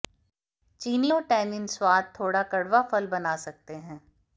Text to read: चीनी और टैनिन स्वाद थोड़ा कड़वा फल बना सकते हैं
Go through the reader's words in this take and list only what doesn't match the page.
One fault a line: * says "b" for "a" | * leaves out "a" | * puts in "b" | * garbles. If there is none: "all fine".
all fine